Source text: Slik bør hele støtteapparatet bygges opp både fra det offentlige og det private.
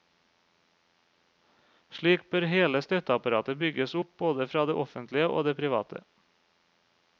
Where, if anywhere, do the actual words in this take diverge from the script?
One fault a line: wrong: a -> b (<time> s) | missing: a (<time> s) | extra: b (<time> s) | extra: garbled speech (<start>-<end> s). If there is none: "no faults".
no faults